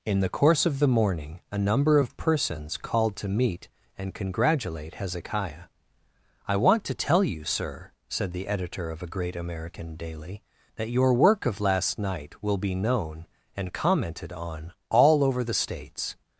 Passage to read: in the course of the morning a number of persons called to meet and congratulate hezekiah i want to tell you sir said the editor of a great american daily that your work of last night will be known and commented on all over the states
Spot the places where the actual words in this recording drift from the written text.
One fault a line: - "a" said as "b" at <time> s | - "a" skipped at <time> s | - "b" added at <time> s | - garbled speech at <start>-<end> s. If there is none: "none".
none